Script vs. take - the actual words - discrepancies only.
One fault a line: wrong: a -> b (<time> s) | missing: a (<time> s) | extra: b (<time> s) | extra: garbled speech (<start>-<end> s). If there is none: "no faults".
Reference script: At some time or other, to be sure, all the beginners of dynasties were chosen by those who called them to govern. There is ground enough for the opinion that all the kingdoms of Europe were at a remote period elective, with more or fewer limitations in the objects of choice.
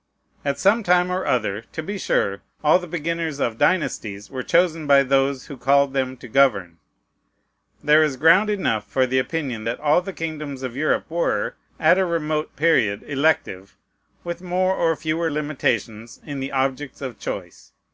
no faults